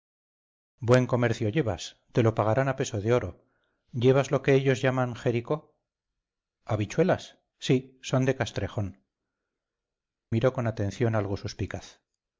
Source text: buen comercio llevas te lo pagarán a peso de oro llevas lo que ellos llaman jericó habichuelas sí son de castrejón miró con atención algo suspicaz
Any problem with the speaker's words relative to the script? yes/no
no